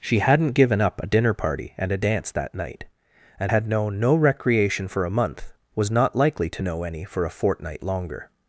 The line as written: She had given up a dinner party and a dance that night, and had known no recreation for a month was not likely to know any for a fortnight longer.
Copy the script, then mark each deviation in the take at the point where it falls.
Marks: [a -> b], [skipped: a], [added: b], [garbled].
She [had -> hadn't] given up a dinner party and a dance that night, and had known no recreation for a month was not likely to know any for a fortnight longer.